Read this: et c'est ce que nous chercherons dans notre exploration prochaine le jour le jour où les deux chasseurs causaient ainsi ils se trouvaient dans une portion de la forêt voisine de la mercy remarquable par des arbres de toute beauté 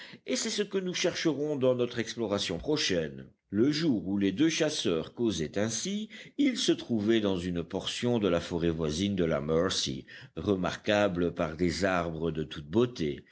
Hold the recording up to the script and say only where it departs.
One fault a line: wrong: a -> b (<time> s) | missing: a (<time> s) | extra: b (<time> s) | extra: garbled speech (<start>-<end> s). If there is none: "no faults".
missing: le jour (4.1 s)